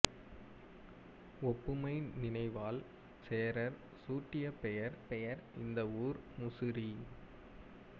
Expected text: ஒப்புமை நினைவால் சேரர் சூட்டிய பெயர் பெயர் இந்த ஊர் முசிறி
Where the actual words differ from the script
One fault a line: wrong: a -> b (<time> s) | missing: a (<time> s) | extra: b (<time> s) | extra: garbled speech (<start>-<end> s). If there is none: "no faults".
no faults